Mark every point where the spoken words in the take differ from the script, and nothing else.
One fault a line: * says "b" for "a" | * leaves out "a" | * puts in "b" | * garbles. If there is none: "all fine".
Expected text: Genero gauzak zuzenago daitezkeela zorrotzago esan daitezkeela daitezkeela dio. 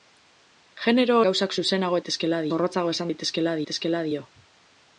all fine